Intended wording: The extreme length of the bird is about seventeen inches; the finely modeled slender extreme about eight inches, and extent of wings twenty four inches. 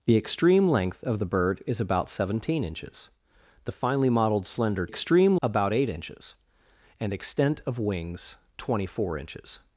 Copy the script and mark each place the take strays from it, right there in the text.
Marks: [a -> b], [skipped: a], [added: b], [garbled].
The extreme length of the bird is about seventeen inches; the finely modeled slender extreme about eight inches, and extent of wings twenty four inches.